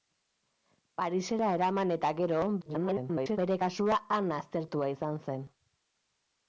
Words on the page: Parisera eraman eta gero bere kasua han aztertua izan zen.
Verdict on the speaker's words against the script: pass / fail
fail